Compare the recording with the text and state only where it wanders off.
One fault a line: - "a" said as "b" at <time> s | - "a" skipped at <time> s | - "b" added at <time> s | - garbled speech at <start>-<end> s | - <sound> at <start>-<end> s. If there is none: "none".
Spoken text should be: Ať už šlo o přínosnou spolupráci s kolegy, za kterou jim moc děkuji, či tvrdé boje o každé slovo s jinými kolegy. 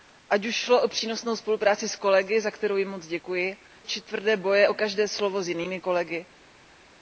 none